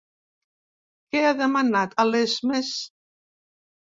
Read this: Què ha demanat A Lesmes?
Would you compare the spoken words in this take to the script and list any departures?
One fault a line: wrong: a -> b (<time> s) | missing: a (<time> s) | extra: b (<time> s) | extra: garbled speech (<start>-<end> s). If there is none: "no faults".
no faults